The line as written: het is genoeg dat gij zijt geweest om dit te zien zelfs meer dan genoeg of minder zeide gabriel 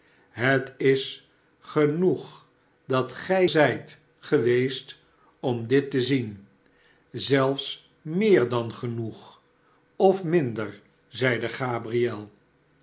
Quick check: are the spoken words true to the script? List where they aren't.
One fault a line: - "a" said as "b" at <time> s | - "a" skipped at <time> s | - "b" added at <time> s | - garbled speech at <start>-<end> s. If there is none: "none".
none